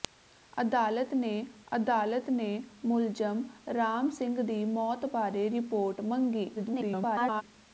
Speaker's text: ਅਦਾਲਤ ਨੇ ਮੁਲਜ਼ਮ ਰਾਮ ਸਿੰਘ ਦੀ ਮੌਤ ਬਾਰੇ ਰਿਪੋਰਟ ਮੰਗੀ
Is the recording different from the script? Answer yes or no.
yes